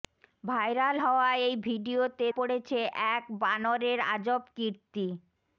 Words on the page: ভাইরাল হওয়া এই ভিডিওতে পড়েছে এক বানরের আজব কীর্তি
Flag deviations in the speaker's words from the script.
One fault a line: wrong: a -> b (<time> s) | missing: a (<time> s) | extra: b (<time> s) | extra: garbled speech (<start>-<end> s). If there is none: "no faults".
no faults